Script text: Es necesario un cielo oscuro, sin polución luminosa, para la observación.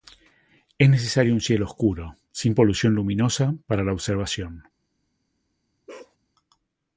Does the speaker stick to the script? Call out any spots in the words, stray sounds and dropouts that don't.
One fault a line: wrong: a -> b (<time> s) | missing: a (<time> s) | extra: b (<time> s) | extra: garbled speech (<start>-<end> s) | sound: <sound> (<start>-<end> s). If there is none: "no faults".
sound: bark (5.9-6.2 s)